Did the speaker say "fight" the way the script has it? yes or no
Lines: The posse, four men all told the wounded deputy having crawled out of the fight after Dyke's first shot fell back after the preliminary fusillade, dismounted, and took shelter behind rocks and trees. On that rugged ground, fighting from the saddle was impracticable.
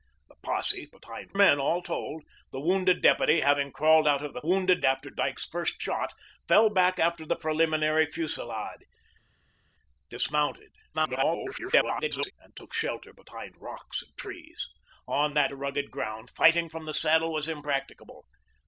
no